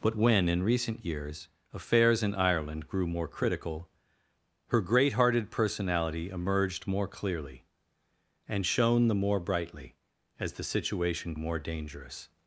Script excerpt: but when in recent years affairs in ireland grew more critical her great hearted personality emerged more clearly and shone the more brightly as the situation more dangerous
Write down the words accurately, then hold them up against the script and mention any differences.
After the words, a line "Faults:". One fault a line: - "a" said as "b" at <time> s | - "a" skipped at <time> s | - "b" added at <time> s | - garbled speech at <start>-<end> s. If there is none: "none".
but when in recent years affairs in ireland grew more critical her great hearted personality emerged more clearly and shone the more brightly as the situation more dangerous
Faults:
none